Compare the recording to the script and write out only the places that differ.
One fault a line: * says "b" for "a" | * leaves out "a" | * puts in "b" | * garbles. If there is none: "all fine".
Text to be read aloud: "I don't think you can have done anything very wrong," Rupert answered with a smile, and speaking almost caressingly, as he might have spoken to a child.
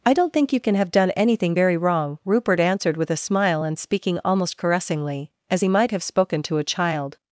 all fine